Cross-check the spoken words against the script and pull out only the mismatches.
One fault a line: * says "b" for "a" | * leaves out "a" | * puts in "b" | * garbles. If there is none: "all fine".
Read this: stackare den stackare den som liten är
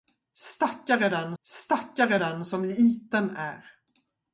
all fine